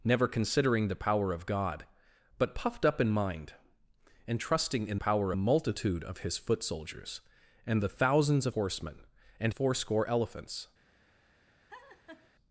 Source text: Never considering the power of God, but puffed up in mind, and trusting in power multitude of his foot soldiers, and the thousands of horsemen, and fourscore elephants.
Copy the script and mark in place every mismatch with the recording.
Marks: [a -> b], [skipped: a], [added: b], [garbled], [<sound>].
Never considering the power of God, but puffed up in mind, and trusting in power multitude of his foot soldiers, and the thousands of horsemen, and fourscore elephants. [laugh]